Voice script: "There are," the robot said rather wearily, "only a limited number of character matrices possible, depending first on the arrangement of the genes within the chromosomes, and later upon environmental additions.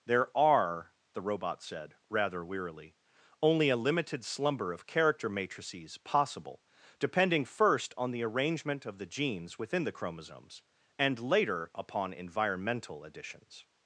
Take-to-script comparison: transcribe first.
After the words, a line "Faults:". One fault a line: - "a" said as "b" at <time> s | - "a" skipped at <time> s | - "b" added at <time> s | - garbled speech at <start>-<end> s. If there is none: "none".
"There are," the robot said rather wearily, "only a limited slumber of character matrices possible, depending first on the arrangement of the genes within the chromosomes, and later upon environmental additions.
Faults:
- "number" said as "slumber" at 4.2 s